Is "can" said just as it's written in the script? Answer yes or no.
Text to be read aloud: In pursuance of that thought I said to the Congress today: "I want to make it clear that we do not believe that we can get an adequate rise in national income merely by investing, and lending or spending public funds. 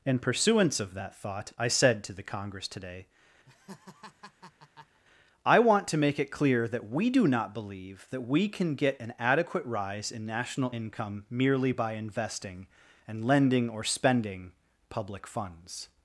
yes